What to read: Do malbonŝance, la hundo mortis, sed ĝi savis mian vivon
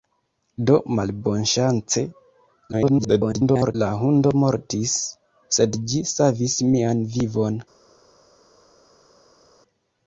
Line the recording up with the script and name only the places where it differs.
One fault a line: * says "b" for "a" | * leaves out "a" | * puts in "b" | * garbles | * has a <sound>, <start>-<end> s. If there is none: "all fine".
* garbles